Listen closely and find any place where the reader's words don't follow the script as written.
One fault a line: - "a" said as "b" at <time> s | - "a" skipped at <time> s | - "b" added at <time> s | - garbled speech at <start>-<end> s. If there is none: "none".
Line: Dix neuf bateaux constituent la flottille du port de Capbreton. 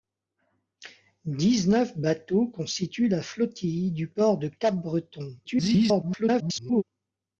- garbled speech at 5.4-6.8 s